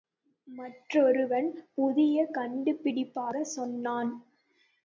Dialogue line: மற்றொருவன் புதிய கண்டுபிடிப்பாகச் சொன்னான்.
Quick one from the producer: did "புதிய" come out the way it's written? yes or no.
yes